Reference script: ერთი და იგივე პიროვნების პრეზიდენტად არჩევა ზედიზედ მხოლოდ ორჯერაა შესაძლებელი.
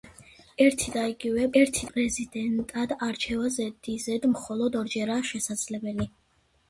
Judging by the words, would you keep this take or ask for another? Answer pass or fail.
fail